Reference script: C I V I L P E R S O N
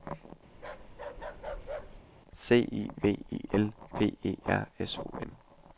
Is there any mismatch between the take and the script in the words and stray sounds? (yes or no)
yes